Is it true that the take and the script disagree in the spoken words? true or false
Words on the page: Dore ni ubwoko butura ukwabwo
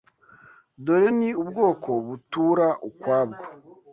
false